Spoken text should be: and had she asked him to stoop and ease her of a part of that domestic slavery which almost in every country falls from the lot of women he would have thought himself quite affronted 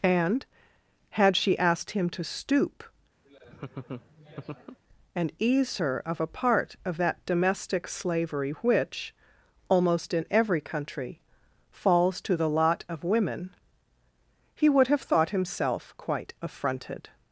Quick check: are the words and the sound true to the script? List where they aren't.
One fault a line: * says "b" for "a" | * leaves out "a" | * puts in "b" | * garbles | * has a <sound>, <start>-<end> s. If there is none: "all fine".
* has a laugh, 3.2-4.8 s
* says "to" for "from"